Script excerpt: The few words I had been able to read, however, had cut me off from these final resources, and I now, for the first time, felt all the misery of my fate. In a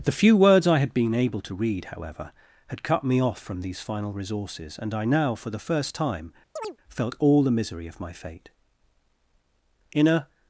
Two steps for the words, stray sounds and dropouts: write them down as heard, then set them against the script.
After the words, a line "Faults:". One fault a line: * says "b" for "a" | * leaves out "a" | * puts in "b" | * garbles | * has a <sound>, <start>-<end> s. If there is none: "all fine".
The few words I had been able to read, however, had cut me off from these final resources, and I now, for the first time, felt all the misery of my fate. In a
Faults:
* has a chirp, 6.6-6.8 s